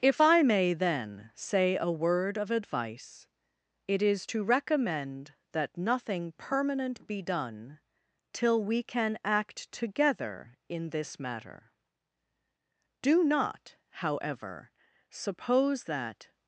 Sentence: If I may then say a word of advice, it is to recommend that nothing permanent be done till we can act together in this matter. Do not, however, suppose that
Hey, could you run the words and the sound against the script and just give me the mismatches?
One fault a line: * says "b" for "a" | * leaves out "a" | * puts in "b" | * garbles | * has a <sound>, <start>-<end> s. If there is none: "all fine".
all fine